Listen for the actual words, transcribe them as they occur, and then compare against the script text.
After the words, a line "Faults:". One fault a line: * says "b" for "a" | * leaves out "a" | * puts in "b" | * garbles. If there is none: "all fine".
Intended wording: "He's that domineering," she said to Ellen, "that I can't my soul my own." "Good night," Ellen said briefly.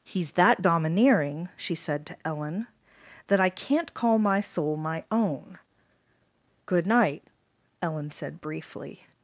"He's that domineering," she said to Ellen, "that I can't call my soul my own." "Good night," Ellen said briefly.
Faults:
* puts in "call"